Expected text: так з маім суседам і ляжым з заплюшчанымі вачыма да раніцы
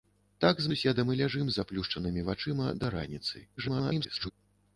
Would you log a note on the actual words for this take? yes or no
yes